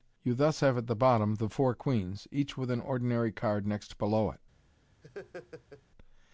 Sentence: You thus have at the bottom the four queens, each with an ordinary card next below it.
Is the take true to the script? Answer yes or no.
yes